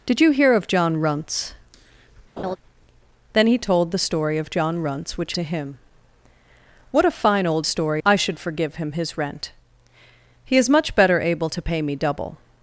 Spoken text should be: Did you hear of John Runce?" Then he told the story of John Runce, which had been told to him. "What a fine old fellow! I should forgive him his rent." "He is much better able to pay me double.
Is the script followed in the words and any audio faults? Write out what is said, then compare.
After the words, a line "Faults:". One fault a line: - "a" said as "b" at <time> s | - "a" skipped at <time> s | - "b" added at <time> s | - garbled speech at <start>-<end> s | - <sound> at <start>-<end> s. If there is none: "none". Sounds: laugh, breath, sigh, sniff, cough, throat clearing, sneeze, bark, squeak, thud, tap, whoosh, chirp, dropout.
Did you hear of John Runce?" Then he told the story of John Runce, which to him. "What a fine old story! I should forgive him his rent." "He is much better able to pay me double.
Faults:
- laugh at 2.4-2.6 s
- "had been told" skipped at 5.3 s
- "fellow" said as "story" at 7.6 s